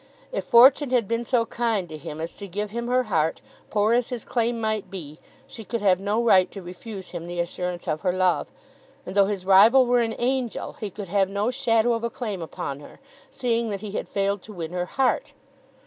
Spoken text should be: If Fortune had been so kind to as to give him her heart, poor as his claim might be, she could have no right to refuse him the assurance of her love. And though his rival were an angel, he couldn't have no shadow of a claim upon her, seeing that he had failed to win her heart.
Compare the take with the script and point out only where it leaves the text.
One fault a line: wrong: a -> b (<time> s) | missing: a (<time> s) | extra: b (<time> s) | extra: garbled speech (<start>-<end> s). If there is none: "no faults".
extra: him (1.9 s)
wrong: couldn't -> could (10.9 s)